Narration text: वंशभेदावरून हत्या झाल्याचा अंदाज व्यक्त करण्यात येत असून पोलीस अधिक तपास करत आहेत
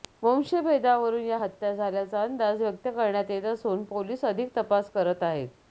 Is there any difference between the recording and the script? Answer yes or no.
yes